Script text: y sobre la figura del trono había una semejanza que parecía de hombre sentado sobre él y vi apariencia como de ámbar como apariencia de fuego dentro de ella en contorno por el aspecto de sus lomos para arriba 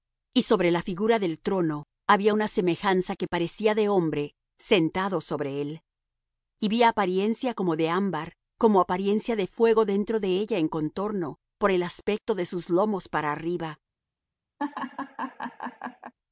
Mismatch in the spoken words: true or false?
false